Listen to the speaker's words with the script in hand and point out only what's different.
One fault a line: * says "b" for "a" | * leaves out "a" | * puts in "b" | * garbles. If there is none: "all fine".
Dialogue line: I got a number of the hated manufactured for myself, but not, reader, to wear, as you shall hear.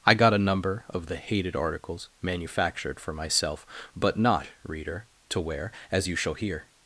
* puts in "articles"